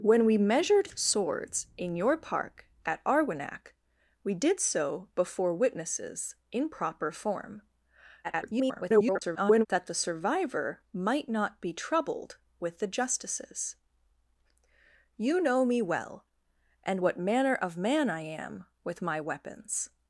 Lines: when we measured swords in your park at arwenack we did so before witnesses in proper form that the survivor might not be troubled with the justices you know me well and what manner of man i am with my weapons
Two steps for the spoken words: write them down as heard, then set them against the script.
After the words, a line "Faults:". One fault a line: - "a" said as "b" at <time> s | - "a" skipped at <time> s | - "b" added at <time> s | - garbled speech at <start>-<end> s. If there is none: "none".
when we measured swords in your park at arwenack we did so before witnesses in proper form [garbled] that the survivor might not be troubled with the justices you know me well and what manner of man i am with my weapons
Faults:
- garbled speech at 8.2-9.7 s